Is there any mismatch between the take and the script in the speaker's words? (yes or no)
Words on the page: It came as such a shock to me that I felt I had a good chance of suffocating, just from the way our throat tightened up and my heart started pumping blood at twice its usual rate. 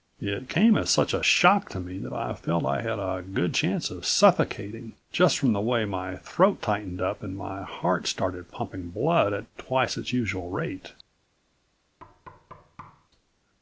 yes